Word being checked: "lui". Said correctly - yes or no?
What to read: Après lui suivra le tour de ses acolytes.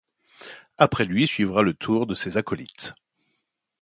yes